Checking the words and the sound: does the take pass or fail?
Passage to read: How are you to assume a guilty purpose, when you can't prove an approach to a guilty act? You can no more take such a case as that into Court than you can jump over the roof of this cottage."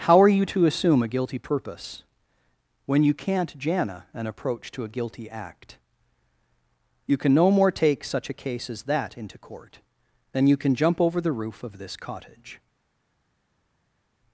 fail